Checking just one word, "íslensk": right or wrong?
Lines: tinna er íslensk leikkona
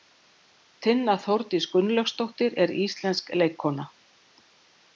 right